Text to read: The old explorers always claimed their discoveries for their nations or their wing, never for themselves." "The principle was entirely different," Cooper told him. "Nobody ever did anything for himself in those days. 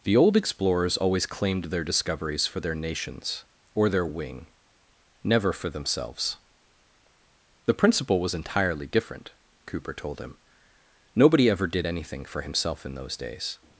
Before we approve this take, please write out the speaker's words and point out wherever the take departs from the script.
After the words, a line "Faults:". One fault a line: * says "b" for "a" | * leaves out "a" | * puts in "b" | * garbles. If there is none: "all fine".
The old explorers always claimed their discoveries for their nations or their wing, never for themselves." "The principle was entirely different," Cooper told him. "Nobody ever did anything for himself in those days.
Faults:
all fine